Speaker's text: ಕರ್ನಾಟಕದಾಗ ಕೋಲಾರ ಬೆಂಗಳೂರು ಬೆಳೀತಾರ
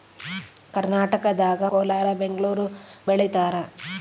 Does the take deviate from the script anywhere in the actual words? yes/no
no